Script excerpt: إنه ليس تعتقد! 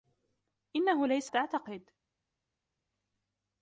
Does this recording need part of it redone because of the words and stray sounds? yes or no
no